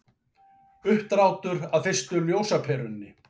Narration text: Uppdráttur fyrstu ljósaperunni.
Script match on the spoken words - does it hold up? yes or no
no